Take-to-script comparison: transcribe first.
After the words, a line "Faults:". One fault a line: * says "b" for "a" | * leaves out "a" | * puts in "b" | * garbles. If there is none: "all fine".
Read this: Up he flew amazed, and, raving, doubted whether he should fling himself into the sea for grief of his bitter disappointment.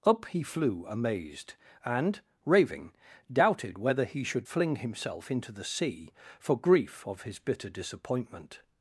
Up he flew amazed, and, raving, doubted whether he should fling himself into the sea for grief of his bitter disappointment.
Faults:
all fine